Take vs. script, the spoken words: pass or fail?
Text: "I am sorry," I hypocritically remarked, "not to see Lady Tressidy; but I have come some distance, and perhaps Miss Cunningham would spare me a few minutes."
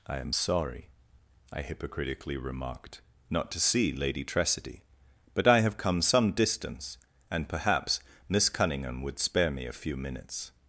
pass